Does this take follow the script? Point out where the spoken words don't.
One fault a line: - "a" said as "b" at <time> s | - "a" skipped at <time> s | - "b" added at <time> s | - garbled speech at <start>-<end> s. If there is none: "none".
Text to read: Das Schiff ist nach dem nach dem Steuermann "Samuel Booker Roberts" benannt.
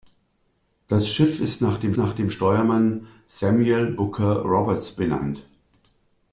none